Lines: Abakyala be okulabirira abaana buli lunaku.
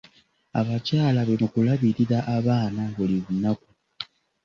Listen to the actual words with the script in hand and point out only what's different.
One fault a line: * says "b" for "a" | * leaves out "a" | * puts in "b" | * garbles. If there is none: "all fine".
all fine